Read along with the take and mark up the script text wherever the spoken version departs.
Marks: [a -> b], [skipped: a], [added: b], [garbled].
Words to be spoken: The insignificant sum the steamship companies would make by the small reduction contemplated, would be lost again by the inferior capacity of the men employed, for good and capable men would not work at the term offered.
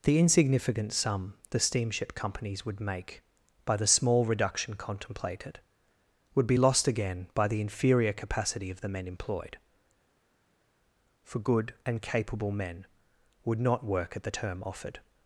The insignificant sum the steamship companies would make by the small reduction contemplated, would be lost again by the inferior capacity of the men employed, for good and capable men would not work at the term offered.